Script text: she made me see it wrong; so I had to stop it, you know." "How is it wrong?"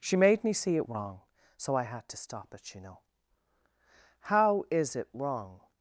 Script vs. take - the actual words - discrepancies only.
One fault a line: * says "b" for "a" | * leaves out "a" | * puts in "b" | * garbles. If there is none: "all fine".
all fine